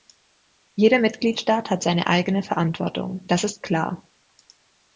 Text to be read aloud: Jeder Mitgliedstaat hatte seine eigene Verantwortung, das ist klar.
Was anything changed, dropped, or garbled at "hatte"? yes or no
yes